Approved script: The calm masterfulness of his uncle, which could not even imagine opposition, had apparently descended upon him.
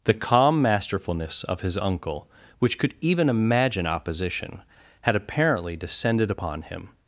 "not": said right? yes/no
no